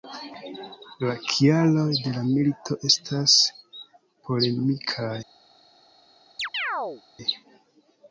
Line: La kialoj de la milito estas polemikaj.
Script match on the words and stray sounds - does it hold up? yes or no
no